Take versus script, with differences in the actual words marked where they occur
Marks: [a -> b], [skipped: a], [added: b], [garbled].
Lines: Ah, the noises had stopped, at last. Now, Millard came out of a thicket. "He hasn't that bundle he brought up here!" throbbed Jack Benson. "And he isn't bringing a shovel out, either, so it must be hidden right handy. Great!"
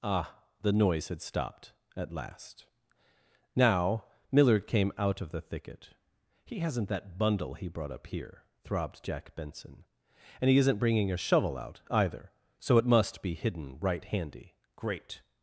Ah, the [noises -> noise] had stopped, at last. Now, Millard came out of [a -> the] thicket. "He hasn't that bundle he brought up here!" throbbed Jack Benson. "And he isn't bringing a shovel out, either, so it must be hidden right handy. Great!"